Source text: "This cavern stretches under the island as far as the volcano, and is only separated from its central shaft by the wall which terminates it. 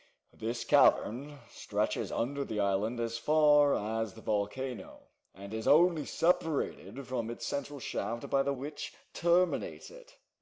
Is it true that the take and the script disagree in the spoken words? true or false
true